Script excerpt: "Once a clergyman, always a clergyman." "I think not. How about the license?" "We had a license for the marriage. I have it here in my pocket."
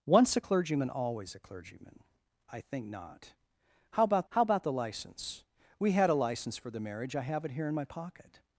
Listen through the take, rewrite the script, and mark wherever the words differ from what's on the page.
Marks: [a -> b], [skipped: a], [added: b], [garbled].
"Once a clergyman, always a clergyman." "I think not. How about [added: how about] the license?" "We had a license for the marriage. I have it here in my pocket."